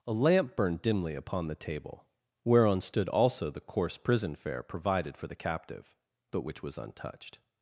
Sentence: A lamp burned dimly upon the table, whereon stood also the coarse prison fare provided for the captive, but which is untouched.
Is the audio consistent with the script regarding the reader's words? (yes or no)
no